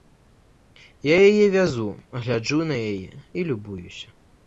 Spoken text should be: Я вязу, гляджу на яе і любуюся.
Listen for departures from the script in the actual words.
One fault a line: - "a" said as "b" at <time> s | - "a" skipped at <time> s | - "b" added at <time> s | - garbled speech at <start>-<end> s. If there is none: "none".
- "яе" added at 1.3 s